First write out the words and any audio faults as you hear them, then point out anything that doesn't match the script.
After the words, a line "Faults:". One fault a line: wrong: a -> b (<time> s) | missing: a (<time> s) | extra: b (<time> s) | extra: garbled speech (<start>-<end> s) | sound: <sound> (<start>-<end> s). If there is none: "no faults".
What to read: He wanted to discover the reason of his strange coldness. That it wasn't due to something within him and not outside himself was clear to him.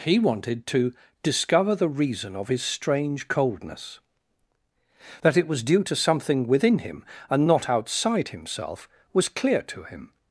He wanted to discover the reason of his strange coldness. That it was due to something within him and not outside himself was clear to him.
Faults:
wrong: wasn't -> was (5.5 s)